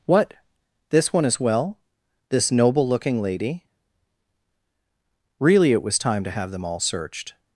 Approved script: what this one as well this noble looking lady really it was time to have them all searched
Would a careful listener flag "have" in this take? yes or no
no